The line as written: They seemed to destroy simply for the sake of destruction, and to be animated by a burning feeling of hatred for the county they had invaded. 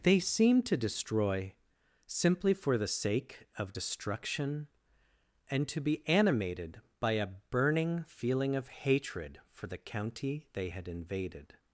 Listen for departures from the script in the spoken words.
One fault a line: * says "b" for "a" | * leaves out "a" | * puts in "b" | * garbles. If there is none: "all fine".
all fine